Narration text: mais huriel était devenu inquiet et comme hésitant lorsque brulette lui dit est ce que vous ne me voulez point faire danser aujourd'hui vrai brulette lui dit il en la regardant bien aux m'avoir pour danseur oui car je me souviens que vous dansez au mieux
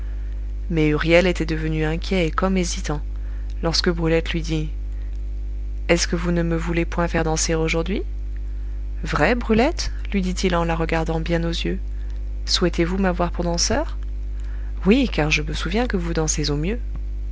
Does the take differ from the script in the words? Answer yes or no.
yes